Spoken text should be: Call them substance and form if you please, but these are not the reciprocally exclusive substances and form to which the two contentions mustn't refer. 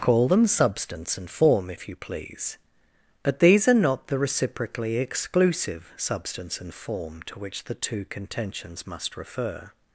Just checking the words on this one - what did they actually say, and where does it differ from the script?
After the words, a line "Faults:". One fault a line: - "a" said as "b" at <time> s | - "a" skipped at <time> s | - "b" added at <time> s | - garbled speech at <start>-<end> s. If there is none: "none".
Call them substance and form if you please, but these are not the reciprocally exclusive substance and form to which the two contentions must refer.
Faults:
- "substances" said as "substance" at 6.0 s
- "mustn't" said as "must" at 8.9 s